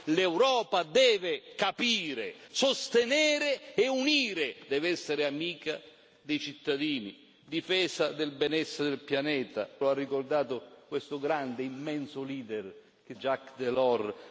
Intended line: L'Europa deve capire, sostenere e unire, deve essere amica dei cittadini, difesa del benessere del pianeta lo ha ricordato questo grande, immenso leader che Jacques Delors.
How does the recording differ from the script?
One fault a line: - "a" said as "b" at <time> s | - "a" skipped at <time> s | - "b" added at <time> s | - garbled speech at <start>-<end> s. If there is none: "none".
none